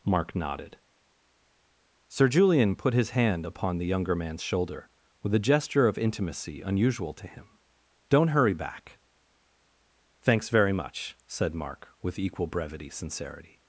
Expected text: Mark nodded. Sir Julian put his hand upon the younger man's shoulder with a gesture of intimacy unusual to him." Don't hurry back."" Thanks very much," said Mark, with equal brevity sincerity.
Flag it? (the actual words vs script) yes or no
no